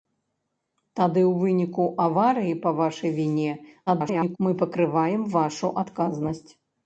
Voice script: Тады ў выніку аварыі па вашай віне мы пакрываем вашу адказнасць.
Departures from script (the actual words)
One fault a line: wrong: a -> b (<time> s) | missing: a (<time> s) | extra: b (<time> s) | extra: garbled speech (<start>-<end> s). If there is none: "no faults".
extra: garbled speech (3.9-4.4 s)